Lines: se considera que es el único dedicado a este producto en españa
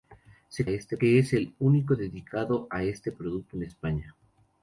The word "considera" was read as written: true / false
false